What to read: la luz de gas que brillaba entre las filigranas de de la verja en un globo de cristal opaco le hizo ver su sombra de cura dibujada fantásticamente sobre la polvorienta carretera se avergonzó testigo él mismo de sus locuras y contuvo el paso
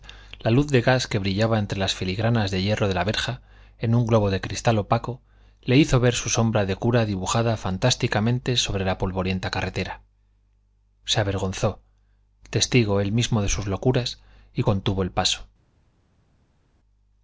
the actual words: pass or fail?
fail